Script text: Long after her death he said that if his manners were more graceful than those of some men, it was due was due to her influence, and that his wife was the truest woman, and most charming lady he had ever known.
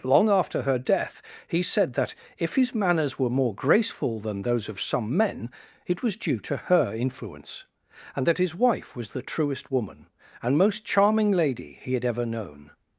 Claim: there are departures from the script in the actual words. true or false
true